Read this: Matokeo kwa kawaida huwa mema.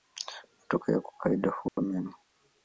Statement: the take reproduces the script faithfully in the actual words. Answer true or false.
true